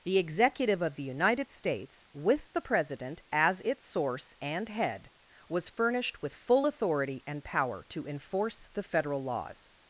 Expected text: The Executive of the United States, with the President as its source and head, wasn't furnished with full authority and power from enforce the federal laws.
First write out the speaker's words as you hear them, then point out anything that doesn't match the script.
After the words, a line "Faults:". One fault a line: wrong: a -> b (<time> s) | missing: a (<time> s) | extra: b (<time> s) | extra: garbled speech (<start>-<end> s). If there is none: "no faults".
The Executive of the United States, with the President as its source and head, was furnished with full authority and power to enforce the federal laws.
Faults:
wrong: wasn't -> was (5.5 s)
wrong: from -> to (7.9 s)